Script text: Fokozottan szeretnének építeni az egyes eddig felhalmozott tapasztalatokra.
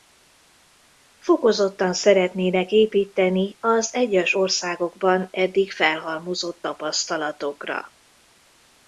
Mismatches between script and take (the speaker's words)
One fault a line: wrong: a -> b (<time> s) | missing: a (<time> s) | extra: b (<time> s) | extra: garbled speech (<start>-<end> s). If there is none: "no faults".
extra: országokban (4.3 s)